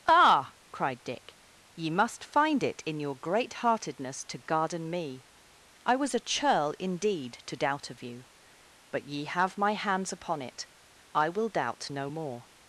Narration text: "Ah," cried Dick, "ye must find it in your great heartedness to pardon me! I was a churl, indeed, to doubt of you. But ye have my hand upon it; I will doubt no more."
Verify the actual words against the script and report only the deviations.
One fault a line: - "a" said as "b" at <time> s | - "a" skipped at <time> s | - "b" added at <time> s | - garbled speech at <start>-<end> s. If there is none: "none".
- "pardon" said as "garden" at 4.4 s
- "hand" said as "hands" at 9.7 s